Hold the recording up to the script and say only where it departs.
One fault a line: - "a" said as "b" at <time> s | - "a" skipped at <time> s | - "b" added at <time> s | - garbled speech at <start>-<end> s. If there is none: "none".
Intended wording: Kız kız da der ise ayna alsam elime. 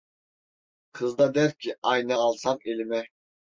- "kız" skipped at 1.2 s
- "ise" said as "ki" at 1.6 s